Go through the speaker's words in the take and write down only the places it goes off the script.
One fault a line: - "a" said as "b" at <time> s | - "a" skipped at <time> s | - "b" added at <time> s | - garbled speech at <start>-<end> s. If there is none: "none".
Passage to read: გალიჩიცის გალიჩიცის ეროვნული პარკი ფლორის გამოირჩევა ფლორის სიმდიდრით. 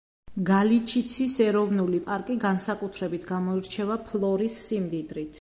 - "გალიჩიცის" skipped at 1.4 s
- "ფლორის" said as "განსაკუთრებით" at 2.5 s